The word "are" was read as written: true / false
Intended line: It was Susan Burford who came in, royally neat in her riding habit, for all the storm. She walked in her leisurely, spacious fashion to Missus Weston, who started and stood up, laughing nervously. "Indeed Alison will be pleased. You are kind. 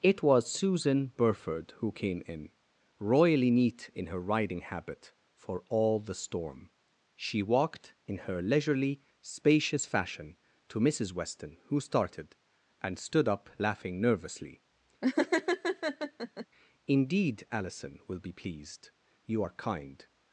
true